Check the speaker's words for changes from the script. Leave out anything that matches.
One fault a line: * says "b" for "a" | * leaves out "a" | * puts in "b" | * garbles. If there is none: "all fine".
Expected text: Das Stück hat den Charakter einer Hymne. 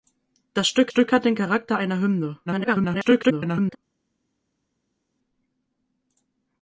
* puts in "Stück"
* garbles